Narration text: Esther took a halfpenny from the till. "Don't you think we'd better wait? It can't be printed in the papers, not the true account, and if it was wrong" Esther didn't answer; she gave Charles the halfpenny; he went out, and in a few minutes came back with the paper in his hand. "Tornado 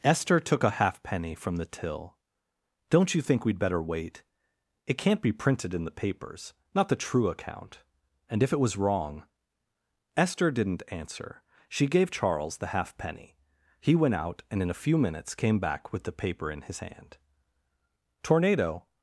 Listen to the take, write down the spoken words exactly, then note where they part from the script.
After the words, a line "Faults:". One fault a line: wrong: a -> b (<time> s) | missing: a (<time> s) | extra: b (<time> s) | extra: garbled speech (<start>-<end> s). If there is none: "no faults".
Esther took a halfpenny from the till. "Don't you think we'd better wait? It can't be printed in the papers, not the true account, and if it was wrong" Esther didn't answer; she gave Charles the halfpenny; he went out, and in a few minutes came back with the paper in his hand. "Tornado
Faults:
no faults